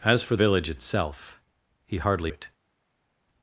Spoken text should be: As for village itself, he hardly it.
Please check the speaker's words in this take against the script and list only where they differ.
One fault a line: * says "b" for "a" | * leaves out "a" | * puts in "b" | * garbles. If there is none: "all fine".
all fine